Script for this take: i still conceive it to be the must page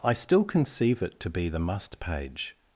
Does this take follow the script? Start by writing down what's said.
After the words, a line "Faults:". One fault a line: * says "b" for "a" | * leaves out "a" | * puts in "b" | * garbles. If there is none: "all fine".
i still conceive it to be the must page
Faults:
all fine